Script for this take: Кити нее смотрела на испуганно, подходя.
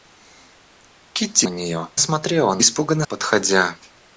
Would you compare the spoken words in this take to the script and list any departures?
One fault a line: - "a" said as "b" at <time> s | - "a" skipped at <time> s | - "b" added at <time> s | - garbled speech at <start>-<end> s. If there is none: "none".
none